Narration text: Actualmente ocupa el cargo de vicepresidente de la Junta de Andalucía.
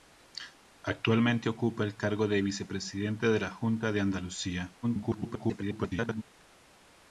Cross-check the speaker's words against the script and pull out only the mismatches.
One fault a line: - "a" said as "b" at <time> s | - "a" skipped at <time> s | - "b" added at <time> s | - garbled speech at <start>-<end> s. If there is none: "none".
- garbled speech at 4.8-6.2 s